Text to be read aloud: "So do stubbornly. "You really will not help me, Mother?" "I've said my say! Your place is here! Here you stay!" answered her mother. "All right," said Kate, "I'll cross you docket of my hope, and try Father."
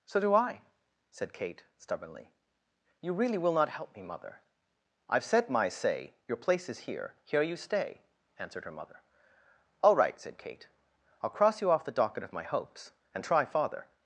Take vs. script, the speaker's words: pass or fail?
fail